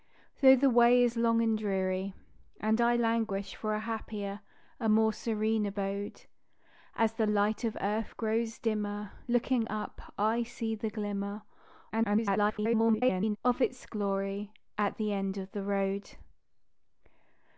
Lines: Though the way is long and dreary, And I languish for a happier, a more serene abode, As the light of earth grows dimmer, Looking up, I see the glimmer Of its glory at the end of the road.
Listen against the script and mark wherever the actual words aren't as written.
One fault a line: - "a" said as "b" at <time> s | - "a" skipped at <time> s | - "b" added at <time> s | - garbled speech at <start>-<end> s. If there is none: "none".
- garbled speech at 11.9-13.4 s